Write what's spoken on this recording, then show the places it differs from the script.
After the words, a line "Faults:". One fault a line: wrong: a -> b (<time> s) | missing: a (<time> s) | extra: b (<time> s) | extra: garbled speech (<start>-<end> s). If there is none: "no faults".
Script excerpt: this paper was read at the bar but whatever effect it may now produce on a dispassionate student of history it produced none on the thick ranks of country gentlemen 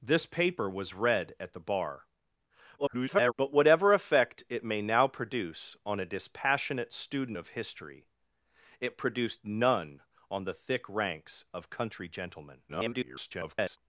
this paper was read at the bar [garbled] but whatever effect it may now produce on a dispassionate student of history it produced none on the thick ranks of country gentlemen [garbled]
Faults:
extra: garbled speech (2.8-3.3 s)
extra: garbled speech (12.7-13.8 s)